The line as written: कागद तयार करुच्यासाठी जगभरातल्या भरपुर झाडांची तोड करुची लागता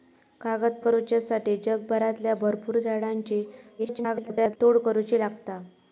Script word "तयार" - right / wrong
wrong